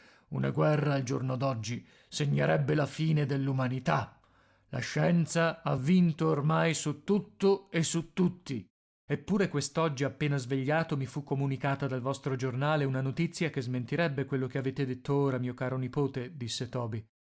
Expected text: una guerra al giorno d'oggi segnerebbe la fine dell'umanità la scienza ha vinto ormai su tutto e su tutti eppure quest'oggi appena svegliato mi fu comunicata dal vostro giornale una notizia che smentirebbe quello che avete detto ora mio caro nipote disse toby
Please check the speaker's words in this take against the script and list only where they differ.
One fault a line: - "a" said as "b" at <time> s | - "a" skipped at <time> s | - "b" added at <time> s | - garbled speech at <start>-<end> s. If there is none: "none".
none